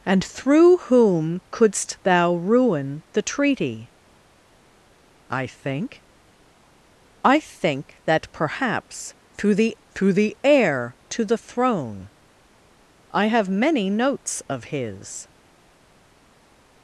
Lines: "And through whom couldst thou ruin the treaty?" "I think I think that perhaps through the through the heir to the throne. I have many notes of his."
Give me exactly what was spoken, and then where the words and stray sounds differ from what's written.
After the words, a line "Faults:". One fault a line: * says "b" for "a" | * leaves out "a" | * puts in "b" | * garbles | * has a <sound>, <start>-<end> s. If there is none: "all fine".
"And through whom couldst thou ruin the treaty?" "I think I think that perhaps through the through the heir to the throne. I have many notes of his."
Faults:
all fine